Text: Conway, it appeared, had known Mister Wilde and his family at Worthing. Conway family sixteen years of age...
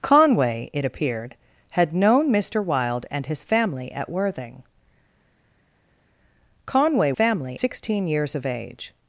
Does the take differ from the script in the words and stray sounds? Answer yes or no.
no